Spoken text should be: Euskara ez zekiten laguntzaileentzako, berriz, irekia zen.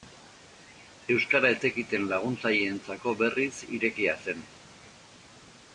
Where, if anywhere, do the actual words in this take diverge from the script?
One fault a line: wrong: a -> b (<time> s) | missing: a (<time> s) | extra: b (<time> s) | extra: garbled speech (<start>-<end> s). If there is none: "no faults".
no faults